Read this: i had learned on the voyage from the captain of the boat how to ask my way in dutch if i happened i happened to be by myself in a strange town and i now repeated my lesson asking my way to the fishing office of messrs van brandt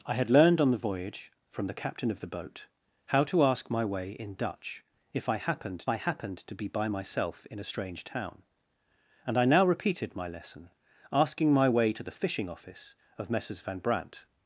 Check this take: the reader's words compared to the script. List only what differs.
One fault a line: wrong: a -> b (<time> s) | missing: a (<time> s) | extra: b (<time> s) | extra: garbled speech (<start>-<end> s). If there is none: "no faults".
no faults